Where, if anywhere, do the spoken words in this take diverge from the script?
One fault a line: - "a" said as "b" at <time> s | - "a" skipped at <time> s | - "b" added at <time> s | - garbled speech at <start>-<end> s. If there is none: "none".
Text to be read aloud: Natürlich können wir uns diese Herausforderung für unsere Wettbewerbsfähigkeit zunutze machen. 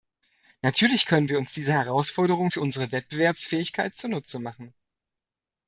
none